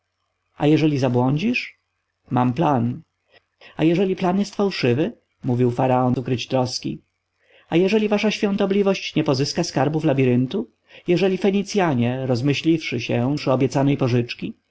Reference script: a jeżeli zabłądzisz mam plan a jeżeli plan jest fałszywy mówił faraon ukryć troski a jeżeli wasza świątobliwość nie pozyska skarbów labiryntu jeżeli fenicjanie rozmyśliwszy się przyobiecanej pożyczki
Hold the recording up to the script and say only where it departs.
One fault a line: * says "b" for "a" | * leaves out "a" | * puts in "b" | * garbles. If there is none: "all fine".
all fine